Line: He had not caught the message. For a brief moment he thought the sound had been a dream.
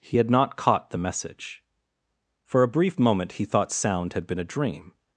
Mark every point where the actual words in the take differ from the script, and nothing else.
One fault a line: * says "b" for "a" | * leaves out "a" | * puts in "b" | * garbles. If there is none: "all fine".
* leaves out "the"